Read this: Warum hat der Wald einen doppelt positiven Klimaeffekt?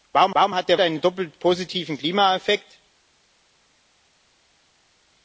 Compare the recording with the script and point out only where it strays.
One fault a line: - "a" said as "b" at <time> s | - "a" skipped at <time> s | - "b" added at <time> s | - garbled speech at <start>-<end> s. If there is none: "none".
- "warum" added at 0.3 s
- "Wald" skipped at 0.8 s